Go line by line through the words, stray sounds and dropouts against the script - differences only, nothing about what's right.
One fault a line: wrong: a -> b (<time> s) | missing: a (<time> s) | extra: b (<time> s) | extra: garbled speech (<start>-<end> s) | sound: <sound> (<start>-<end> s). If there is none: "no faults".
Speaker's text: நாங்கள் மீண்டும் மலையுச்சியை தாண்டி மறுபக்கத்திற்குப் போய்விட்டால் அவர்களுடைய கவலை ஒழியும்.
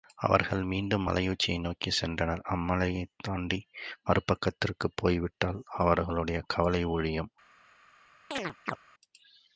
wrong: நாங்கள் -> அவர்கள் (0.2 s)
extra: நோக்கிச் சென்றனர் அம்மலையைத் (1.6 s)
sound: chirp (8.3-8.8 s)